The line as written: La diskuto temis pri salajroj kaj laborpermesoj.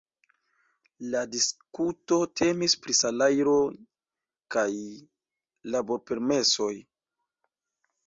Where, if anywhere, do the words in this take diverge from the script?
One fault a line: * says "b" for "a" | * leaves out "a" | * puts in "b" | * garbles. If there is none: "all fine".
all fine